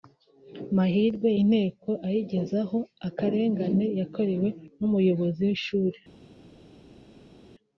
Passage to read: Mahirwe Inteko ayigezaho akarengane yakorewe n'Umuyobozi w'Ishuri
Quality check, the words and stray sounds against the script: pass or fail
pass